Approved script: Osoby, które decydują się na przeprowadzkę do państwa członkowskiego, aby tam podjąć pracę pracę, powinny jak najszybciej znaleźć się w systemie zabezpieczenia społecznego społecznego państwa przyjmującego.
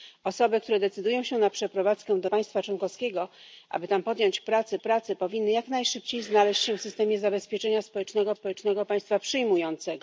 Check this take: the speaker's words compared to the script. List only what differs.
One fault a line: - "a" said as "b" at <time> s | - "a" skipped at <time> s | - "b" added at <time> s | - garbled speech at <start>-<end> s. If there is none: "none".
none